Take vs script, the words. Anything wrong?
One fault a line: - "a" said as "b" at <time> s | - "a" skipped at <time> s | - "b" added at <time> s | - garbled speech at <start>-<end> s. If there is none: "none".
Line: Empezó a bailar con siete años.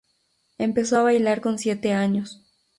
none